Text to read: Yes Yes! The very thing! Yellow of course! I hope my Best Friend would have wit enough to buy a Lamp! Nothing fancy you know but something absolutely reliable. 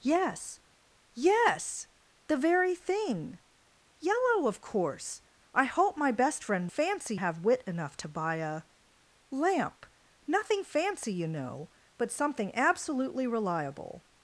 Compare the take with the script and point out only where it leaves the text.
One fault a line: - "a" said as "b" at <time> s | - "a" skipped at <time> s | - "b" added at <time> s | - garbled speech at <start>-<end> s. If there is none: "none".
- "would" said as "fancy" at 6.7 s